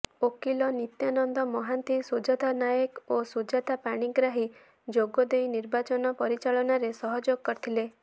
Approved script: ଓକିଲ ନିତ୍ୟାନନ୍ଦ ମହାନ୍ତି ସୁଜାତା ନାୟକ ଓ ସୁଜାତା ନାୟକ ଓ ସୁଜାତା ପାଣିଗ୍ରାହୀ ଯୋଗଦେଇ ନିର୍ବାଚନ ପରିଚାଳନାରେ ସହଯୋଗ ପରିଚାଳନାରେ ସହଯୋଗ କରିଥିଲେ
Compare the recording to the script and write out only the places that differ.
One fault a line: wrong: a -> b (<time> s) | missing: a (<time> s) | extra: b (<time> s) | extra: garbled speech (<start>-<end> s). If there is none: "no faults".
missing: ନାୟକ ଓ ସୁଜାତା (3.8 s)
missing: ପରିଚାଳନାରେ ସହଯୋଗ (7.5 s)